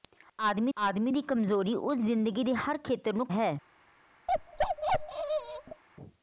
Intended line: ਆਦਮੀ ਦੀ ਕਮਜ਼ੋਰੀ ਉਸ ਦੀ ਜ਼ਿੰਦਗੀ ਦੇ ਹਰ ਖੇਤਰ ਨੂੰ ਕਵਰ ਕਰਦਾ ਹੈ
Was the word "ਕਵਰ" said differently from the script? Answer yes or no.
yes